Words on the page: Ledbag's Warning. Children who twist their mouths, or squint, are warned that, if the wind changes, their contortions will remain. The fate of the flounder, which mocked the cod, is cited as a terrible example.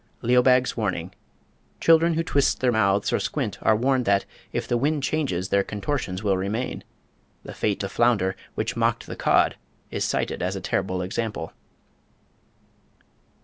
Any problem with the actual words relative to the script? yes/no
yes